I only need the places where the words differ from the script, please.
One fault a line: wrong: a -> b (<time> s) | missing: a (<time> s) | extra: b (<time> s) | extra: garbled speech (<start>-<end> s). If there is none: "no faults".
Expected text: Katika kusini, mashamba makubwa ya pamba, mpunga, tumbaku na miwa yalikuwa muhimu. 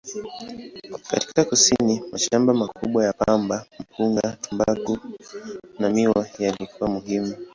no faults